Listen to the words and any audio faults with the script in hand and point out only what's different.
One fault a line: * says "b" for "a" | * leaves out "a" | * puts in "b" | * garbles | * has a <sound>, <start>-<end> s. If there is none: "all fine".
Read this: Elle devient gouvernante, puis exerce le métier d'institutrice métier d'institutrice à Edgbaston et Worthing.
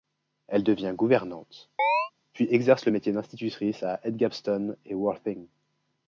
* has a chirp, 1.8-2.1 s
* leaves out "métier d'institutrice"